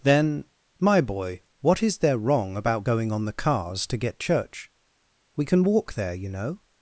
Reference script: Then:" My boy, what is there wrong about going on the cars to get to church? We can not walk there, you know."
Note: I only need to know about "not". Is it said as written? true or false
false